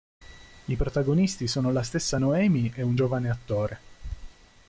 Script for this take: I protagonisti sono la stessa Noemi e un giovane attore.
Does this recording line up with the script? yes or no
yes